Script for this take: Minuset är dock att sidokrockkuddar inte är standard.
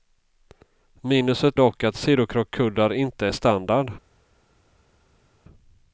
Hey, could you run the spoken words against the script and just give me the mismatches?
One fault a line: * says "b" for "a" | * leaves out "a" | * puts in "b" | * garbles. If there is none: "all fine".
* leaves out "är"